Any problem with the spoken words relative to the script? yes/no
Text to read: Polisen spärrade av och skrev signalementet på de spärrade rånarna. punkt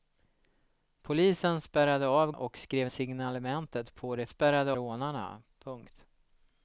no